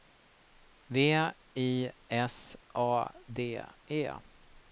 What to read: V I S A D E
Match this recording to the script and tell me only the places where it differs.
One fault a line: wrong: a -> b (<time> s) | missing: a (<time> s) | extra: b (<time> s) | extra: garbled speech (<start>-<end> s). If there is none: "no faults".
no faults